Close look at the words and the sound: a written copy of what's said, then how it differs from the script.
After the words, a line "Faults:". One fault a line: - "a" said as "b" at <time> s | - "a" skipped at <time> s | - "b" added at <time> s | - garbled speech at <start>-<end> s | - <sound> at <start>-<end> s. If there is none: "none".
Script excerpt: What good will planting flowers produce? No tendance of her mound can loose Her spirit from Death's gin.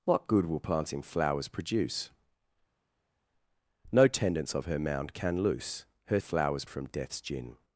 What good will planting flowers produce? No tendance of her mound can loose Her flowers from Death's gin.
Faults:
- "spirit" said as "flowers" at 6.2 s